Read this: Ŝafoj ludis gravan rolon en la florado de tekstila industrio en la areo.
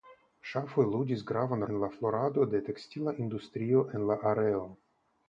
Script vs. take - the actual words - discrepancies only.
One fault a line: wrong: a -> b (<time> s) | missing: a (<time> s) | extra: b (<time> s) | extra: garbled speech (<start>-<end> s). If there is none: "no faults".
missing: rolon (1.6 s)